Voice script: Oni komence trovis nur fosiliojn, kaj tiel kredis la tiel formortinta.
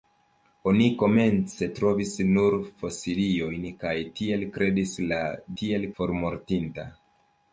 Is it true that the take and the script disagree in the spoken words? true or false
false